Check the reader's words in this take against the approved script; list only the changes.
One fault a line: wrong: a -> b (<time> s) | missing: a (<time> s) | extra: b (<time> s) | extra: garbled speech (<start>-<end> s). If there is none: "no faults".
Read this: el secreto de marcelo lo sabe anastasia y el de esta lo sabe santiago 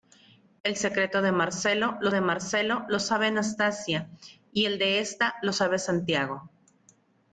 extra: de marcelo lo (2.1 s)